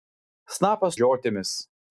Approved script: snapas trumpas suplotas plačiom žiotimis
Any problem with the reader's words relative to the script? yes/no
yes